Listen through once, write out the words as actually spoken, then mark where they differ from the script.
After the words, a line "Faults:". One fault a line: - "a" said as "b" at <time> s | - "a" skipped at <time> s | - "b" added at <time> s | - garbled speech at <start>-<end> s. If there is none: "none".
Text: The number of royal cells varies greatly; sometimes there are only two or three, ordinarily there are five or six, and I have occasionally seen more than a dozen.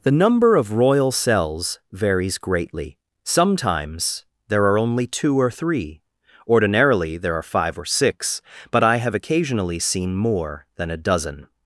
The number of royal cells varies greatly; sometimes there are only two or three, ordinarily there are five or six, but I have occasionally seen more than a dozen.
Faults:
- "and" said as "but" at 8.7 s